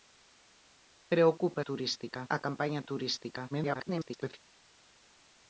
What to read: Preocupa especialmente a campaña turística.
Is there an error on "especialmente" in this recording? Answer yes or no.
yes